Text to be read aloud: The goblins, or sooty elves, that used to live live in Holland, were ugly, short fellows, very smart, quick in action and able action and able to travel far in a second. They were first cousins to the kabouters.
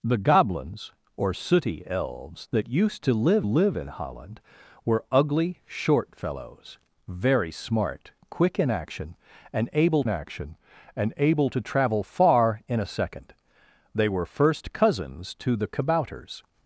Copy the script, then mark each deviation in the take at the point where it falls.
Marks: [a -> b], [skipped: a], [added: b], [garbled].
The goblins, or sooty elves, that used to live live in Holland, were ugly, short fellows, very smart, quick in action and able action and able to travel far in a second. They were first cousins to the kabouters.